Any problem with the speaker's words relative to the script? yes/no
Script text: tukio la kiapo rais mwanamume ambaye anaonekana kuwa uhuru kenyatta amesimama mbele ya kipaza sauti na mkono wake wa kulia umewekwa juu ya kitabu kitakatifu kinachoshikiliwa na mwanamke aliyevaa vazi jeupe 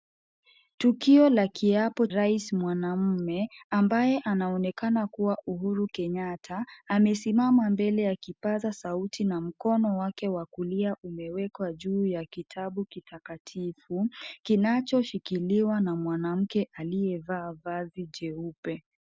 no